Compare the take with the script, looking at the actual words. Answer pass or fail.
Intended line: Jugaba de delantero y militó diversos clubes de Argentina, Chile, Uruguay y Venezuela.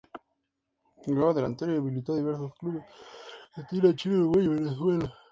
fail